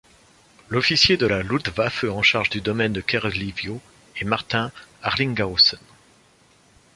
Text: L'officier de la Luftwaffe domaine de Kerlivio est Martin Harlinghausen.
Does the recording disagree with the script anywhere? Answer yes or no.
yes